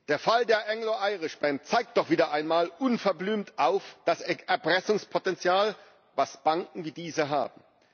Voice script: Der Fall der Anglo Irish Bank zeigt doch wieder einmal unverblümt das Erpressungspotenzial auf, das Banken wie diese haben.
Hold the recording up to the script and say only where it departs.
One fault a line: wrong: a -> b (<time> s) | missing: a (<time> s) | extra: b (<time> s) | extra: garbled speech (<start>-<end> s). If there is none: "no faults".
no faults